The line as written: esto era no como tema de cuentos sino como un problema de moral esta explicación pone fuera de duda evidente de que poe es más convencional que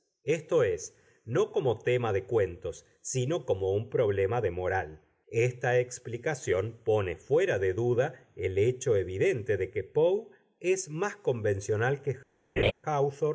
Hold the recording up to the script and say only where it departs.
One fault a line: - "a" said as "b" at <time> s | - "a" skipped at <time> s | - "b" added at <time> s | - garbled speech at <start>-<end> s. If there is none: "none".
- "era" said as "es" at 0.6 s
- "el hecho" added at 8.3 s